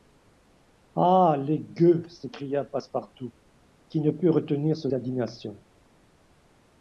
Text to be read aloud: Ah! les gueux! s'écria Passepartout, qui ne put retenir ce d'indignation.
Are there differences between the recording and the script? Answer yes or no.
no